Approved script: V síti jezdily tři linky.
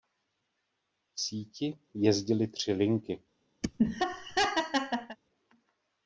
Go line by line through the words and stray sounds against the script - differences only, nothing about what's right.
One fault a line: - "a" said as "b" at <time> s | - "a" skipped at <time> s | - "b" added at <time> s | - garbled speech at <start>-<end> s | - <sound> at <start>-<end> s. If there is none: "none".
- laugh at 3.6-5.2 s